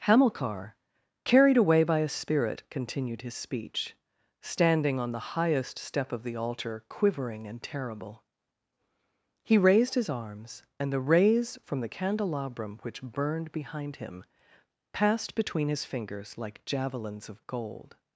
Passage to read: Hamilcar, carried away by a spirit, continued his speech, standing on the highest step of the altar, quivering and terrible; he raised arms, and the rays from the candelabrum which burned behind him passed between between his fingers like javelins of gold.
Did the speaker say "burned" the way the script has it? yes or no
yes